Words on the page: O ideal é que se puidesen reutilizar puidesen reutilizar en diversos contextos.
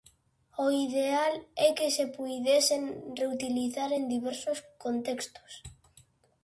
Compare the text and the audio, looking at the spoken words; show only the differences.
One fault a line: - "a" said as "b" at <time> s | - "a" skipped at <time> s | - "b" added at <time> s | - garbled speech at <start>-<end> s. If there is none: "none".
- "puidesen reutilizar" skipped at 3.9 s